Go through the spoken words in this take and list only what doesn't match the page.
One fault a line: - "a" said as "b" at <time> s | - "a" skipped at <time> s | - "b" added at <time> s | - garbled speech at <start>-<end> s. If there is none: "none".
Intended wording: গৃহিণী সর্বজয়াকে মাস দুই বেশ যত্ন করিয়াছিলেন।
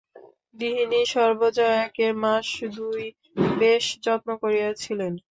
none